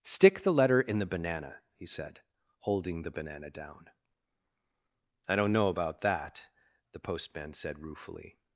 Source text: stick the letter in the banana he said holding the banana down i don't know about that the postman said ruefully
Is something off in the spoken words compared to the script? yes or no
no